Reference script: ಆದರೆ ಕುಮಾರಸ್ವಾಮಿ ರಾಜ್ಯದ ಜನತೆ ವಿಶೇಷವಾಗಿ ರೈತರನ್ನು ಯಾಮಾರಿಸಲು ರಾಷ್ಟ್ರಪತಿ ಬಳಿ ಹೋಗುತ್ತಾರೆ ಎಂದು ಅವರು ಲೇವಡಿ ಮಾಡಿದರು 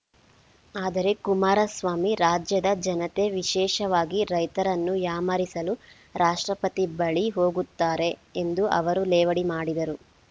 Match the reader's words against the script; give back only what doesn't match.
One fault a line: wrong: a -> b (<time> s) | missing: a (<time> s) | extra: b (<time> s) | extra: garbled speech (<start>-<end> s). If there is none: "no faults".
no faults